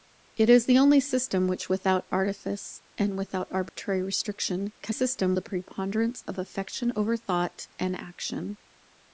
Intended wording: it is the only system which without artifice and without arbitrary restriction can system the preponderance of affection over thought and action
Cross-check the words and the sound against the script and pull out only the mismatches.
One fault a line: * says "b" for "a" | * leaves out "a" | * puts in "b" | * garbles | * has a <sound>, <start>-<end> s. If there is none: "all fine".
* has a dropout, 3.7-3.8 s